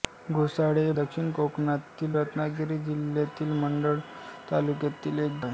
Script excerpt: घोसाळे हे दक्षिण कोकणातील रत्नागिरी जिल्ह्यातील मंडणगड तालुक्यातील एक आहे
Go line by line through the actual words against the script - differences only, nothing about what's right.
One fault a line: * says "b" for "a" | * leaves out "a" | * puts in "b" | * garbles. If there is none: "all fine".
all fine